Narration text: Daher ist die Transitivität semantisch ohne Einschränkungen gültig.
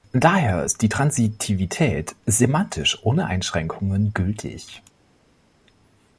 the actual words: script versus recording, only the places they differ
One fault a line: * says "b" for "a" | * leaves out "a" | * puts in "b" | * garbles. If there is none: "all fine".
all fine